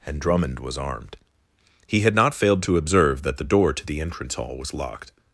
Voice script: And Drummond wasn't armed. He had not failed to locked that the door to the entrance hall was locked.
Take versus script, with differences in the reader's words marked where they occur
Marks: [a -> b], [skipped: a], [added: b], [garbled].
And Drummond [wasn't -> was] armed. He had not failed to [locked -> observe] that the door to the entrance hall was locked.